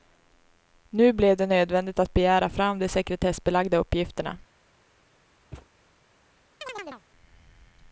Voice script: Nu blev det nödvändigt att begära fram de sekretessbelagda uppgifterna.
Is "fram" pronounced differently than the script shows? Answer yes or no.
no